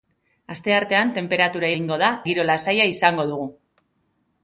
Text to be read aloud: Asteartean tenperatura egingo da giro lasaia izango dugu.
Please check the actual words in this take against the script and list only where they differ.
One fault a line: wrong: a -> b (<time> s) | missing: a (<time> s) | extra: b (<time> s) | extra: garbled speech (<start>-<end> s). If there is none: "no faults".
no faults